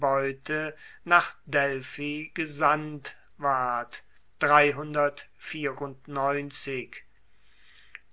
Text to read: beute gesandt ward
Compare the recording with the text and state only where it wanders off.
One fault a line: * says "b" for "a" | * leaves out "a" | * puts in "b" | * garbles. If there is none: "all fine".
* puts in "nach delphi"